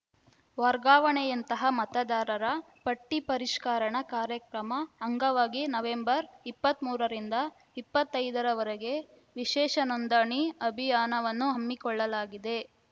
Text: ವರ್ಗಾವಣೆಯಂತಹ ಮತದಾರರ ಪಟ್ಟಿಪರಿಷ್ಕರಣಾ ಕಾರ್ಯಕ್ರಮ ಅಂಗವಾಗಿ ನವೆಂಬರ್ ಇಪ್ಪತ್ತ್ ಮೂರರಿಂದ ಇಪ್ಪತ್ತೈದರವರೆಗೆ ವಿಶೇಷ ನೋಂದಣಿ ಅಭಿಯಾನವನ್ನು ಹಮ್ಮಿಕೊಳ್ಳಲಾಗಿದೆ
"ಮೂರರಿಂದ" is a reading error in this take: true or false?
false